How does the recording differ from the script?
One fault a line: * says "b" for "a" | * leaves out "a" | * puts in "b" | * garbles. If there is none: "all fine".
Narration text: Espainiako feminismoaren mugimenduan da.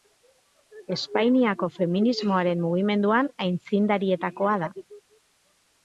* puts in "aitzindarietakoa"